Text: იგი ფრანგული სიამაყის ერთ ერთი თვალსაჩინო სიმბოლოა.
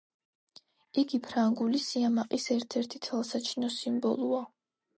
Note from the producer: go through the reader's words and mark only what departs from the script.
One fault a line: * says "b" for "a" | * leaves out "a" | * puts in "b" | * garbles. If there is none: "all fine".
all fine